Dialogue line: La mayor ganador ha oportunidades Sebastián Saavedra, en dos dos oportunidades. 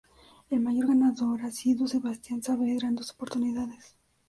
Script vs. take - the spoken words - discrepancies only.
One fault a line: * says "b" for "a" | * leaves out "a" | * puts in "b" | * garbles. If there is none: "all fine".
* says "El" for "La"
* says "sido" for "oportunidades"
* leaves out "dos"